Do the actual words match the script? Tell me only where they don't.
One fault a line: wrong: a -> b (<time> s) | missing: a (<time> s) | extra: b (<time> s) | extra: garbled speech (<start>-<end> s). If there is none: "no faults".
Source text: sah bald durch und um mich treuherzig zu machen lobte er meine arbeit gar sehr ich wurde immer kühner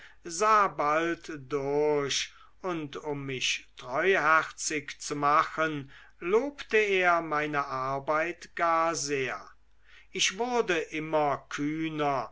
no faults